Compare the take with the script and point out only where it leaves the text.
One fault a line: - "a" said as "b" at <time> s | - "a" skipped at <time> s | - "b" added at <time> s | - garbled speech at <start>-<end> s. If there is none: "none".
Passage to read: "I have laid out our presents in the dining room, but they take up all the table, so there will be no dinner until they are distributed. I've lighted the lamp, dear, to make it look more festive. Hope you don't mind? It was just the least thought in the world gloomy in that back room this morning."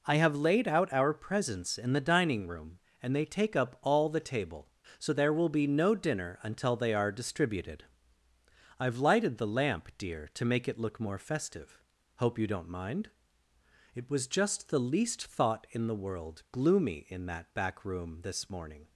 - "but" said as "and" at 3.0 s